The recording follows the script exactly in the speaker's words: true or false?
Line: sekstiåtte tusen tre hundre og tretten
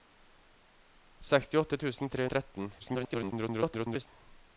false